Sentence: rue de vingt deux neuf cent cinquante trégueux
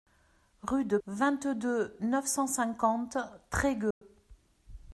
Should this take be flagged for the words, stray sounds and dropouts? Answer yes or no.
yes